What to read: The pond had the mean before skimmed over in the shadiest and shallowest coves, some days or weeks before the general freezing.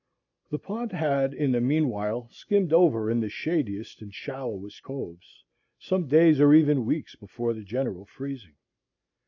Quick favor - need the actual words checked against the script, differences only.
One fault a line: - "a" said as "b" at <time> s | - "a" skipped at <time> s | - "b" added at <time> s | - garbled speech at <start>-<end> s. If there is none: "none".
- "in" added at 1.3 s
- "before" said as "while" at 1.9 s
- "even" added at 6.5 s